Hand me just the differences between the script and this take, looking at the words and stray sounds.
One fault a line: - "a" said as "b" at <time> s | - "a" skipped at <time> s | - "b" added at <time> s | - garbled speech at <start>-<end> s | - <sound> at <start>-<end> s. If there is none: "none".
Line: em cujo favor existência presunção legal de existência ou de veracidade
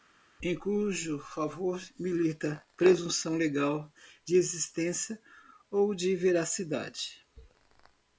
- "existência" said as "milita" at 2.0 s